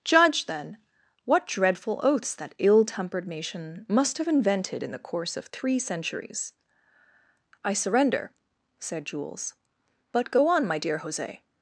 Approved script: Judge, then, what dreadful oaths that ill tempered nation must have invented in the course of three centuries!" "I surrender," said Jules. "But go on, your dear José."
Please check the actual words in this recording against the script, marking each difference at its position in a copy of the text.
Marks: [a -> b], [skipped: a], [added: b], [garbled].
Judge, then, what dreadful oaths that ill tempered nation must have invented in the course of three centuries!" "I surrender," said Jules. "But go on, [your -> my] dear José."